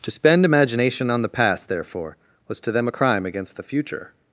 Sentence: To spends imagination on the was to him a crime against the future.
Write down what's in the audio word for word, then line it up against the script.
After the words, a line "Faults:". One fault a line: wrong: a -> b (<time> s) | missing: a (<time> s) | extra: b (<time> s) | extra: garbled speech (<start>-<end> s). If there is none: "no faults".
To spend imagination on the past, therefore, was to them a crime against the future.
Faults:
wrong: spends -> spend (0.1 s)
extra: past therefore (1.3 s)
wrong: him -> them (2.7 s)